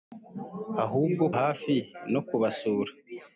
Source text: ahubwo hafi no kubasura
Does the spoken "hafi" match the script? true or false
true